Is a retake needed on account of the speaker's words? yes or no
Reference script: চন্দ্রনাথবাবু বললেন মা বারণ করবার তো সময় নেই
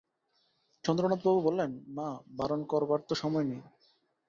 no